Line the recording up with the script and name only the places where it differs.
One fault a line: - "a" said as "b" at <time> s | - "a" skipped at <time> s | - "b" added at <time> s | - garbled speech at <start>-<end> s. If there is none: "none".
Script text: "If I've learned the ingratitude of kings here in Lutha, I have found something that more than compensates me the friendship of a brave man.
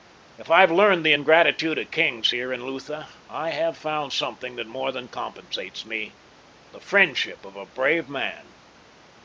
none